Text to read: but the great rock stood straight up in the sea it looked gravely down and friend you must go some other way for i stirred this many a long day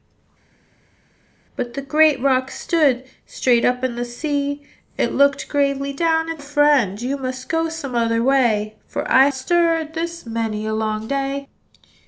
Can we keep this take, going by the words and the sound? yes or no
yes